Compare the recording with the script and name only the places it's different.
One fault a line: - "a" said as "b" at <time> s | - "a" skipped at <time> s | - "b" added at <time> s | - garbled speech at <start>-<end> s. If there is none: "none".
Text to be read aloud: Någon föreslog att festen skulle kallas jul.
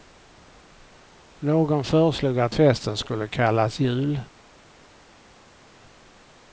none